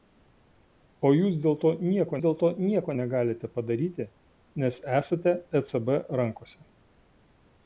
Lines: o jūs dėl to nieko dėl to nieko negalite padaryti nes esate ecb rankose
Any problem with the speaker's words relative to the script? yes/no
no